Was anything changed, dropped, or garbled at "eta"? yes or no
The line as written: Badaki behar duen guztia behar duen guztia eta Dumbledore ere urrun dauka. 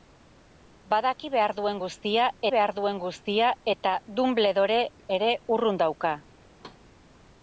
no